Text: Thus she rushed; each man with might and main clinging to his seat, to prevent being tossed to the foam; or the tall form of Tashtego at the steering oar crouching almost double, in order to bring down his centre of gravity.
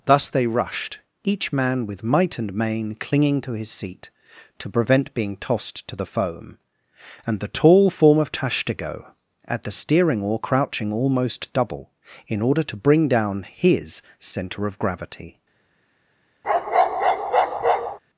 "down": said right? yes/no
yes